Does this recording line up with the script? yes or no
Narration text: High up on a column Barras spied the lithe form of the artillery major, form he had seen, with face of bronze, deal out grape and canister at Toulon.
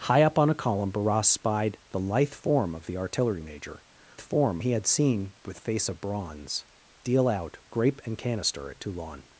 yes